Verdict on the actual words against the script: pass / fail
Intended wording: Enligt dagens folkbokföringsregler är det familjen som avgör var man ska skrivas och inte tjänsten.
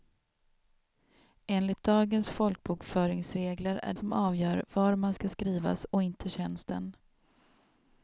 fail